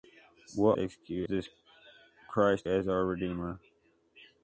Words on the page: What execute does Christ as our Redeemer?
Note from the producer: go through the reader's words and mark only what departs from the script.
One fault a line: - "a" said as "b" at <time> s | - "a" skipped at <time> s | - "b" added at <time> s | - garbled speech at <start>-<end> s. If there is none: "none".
none